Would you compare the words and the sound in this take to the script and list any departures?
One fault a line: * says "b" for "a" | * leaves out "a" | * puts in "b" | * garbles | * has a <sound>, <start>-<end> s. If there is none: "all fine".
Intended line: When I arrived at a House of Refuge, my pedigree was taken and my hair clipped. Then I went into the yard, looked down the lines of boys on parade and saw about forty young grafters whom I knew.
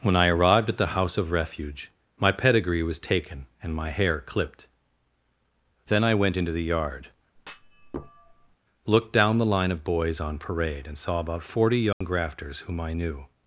* says "the" for "a"
* has a thud, 7.4-8.6 s
* says "line" for "lines"
* has a dropout, 11.9-12.0 s